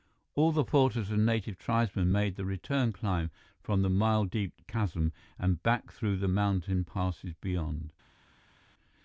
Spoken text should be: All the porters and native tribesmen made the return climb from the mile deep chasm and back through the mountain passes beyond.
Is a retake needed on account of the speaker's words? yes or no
no